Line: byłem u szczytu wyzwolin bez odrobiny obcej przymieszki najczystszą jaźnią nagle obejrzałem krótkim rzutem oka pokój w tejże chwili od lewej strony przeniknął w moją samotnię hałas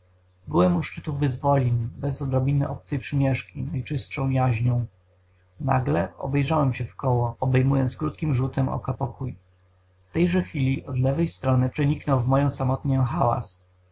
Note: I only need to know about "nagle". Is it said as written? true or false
true